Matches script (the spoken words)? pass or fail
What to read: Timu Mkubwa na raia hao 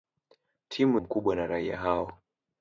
pass